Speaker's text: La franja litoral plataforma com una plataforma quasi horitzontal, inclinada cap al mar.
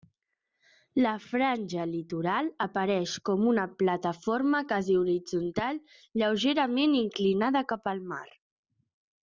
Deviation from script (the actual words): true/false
true